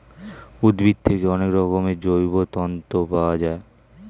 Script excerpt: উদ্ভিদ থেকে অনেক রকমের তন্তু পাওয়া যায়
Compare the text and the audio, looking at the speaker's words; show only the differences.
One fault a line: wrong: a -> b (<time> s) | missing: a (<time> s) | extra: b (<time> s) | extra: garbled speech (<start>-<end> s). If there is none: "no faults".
extra: জৈব (2.0 s)